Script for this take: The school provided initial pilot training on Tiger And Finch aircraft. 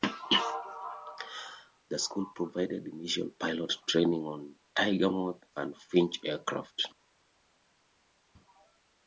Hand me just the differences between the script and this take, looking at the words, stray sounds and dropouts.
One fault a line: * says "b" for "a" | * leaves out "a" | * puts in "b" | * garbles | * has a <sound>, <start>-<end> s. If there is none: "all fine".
* puts in "Moth"